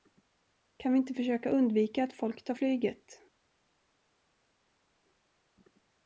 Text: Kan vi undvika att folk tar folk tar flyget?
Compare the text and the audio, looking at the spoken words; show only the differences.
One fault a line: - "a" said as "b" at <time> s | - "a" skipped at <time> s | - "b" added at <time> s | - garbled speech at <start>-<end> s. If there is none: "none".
- "inte försöka" added at 1.0 s
- "folk tar" skipped at 2.5 s